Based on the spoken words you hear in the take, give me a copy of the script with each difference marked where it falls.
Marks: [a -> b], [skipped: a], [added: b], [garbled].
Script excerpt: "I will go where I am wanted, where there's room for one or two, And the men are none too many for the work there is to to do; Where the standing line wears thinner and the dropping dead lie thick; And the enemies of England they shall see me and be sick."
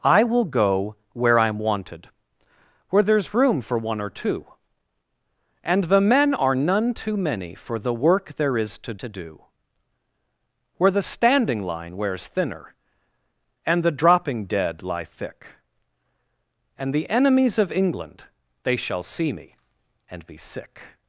"I will go where I am wanted, where there's room for one or two, And the men are none too many for the work there is to to do; Where the standing line wears thinner and the dropping dead lie thick; And the enemies of England they shall see me and be sick."